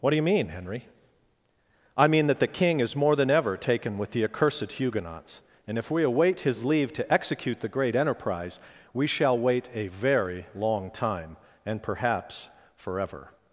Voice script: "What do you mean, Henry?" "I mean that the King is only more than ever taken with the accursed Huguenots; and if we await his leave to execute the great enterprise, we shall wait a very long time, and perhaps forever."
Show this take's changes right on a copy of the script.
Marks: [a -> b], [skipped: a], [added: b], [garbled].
"What do you mean, Henry?" "I mean that the King is [skipped: only] more than ever taken with the accursed Huguenots; and if we await his leave to execute the great enterprise, we shall wait a very long time, and perhaps forever."